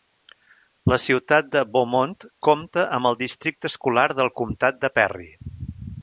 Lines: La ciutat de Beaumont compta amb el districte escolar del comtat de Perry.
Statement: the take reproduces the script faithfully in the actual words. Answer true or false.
true